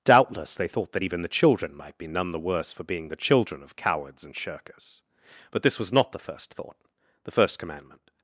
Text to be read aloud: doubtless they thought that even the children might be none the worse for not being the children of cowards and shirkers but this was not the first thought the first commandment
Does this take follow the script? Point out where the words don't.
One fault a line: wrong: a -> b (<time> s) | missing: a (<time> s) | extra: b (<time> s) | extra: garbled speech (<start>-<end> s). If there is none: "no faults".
missing: not (2.8 s)